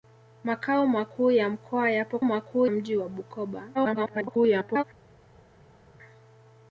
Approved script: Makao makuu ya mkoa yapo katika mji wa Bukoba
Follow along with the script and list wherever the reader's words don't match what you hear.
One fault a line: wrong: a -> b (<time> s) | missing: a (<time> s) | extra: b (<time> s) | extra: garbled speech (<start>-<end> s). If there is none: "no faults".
wrong: katika -> makuu (2.2 s)
extra: garbled speech (3.7-4.8 s)